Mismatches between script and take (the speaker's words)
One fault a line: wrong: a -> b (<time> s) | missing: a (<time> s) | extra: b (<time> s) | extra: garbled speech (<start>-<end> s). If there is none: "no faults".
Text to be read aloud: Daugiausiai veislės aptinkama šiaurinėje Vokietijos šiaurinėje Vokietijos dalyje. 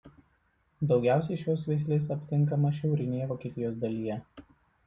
extra: šios (1.4 s)
missing: šiaurinėje Vokietijos (3.8 s)